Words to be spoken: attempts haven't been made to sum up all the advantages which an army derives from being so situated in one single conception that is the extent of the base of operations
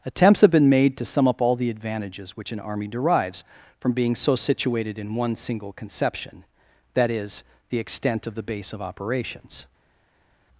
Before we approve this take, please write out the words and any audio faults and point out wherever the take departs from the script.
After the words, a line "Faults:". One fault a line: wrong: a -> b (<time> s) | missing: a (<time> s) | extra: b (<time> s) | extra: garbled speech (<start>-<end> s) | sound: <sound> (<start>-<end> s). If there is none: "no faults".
attempts have been made to sum up all the advantages which an army derives from being so situated in one single conception that is the extent of the base of operations
Faults:
wrong: haven't -> have (0.4 s)